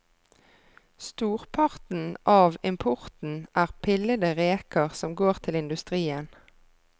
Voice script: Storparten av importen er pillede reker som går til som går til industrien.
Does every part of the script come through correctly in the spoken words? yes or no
no